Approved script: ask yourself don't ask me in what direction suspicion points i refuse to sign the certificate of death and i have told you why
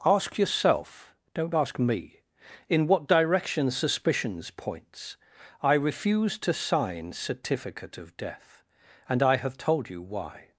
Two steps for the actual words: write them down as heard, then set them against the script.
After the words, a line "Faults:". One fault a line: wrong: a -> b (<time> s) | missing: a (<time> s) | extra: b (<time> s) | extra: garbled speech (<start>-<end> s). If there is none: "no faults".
ask yourself don't ask me in what direction suspicions points i refuse to sign certificate of death and i have told you why
Faults:
wrong: suspicion -> suspicions (3.7 s)
missing: the (7.1 s)